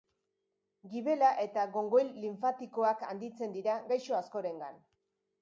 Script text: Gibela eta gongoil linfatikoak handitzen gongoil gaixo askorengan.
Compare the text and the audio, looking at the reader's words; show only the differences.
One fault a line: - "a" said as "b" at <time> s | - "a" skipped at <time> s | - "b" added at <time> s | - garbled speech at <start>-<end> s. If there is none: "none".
- "gongoil" said as "dira" at 3.6 s